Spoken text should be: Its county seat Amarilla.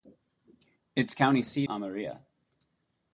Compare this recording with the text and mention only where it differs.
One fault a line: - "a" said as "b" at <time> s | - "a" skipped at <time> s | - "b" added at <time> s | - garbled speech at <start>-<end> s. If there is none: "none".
none